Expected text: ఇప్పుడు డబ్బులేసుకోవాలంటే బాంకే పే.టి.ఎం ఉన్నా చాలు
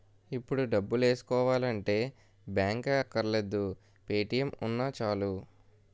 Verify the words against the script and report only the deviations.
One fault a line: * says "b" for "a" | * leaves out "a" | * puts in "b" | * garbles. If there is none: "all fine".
* puts in "అక్కర్లేదు"